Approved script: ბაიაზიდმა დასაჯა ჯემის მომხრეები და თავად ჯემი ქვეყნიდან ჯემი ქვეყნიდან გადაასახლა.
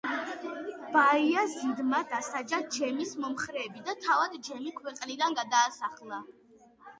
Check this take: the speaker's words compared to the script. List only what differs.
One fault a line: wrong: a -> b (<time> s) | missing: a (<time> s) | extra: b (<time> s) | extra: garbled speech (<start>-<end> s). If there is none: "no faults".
missing: ჯემი ქვეყნიდან (5.4 s)